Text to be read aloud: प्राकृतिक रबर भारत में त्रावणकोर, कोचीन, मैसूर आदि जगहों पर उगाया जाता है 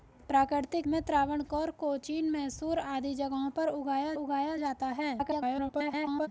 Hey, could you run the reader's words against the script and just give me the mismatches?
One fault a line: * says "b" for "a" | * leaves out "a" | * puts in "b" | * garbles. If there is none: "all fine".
* leaves out "रबर भारत"
* puts in "उगाया"
* garbles